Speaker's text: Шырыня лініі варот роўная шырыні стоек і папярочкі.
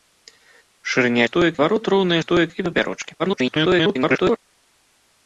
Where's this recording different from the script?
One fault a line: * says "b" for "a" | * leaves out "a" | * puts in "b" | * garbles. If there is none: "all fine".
* says "стоек" for "лініі"
* leaves out "шырыні"
* garbles